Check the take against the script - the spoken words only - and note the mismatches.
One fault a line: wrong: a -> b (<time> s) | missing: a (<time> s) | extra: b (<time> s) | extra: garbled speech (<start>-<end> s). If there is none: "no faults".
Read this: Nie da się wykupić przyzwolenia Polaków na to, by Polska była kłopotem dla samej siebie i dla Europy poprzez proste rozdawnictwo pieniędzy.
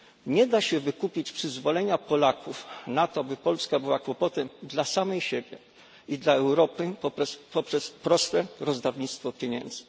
no faults